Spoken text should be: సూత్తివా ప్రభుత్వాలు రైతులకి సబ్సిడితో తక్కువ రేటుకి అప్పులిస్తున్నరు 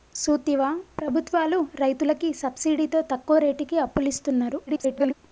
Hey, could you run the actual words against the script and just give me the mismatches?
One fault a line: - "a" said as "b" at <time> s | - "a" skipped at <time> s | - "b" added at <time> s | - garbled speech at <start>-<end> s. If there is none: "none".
- garbled speech at 4.7-5.1 s